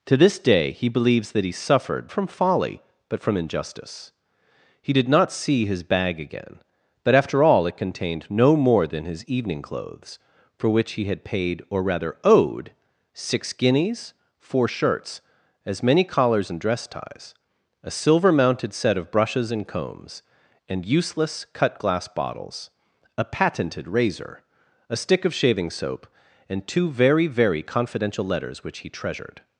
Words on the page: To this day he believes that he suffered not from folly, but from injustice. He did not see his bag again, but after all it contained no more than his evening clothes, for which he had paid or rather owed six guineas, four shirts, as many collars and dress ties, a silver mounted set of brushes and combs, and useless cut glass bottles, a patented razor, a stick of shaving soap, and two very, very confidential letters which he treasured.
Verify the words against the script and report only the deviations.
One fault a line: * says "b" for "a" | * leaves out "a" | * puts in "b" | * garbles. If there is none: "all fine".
* leaves out "not"